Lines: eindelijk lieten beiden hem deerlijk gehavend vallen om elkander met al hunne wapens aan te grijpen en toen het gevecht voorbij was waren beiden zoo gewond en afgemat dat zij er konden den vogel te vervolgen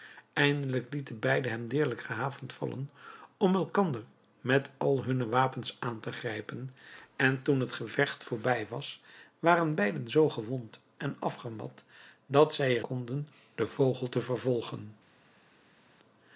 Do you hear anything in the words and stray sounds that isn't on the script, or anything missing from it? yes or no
no